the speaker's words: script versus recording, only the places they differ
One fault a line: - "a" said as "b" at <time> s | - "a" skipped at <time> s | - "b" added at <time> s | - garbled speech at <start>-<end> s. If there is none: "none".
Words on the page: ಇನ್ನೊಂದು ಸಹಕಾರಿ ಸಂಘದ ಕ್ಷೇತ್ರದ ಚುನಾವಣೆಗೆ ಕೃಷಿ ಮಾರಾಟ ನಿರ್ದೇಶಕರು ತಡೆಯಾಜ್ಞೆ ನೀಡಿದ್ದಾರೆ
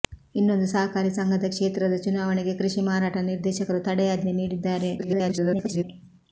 - garbled speech at 5.0-5.8 s